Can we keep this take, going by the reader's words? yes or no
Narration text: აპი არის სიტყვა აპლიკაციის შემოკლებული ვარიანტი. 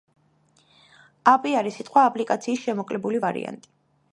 yes